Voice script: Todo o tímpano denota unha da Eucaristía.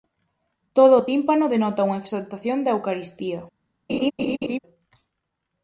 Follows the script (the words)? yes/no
no